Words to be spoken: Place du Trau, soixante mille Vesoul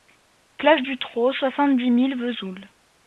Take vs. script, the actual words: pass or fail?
fail